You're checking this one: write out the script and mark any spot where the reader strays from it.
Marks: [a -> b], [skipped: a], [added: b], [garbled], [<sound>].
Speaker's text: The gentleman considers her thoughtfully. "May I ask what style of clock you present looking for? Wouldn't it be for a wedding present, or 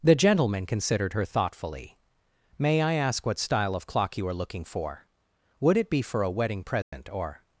The gentleman [considers -> considered] her thoughtfully. "May I ask what style of clock you [present -> are] looking for? [Wouldn't -> Would] it be for a wedding present, [dropout] or